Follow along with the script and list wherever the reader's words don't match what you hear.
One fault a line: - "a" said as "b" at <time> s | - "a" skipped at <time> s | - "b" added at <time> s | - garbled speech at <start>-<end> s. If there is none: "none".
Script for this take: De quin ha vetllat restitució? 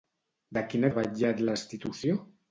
none